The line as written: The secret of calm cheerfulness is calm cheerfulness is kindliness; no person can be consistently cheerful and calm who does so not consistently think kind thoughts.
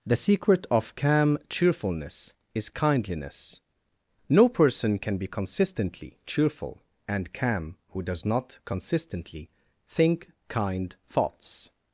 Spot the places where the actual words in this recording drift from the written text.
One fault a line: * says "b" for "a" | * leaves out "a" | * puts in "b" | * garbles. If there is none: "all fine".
* leaves out "calm cheerfulness is"
* leaves out "so"